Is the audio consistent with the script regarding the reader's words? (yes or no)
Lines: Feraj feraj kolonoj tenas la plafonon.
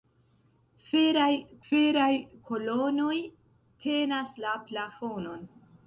yes